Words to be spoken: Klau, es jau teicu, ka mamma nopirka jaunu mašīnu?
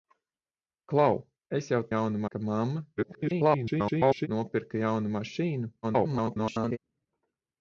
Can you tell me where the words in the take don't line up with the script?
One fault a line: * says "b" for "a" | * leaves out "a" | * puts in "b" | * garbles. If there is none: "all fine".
* says "jaunu" for "teicu"
* garbles
* garbles